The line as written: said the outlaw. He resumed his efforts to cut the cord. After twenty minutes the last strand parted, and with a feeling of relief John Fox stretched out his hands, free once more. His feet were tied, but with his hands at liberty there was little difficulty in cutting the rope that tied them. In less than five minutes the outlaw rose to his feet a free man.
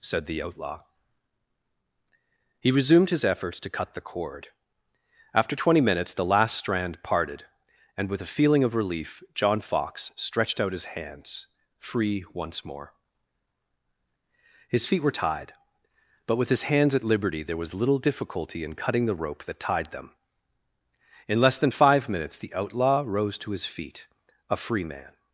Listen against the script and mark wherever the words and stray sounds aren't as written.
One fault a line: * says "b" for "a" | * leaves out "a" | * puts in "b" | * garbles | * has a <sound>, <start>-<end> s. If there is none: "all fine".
all fine